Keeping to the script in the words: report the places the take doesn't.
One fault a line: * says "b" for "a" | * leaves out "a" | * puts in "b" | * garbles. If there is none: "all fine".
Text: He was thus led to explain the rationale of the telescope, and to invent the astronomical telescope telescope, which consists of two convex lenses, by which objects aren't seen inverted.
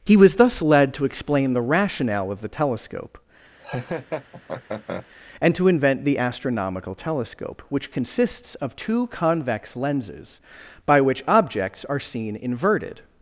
* leaves out "telescope"
* says "are" for "aren't"